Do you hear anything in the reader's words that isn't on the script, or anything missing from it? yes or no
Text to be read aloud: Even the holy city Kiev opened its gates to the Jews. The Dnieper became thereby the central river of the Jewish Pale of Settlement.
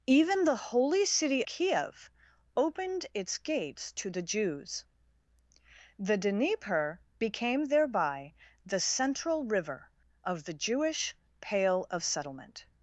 no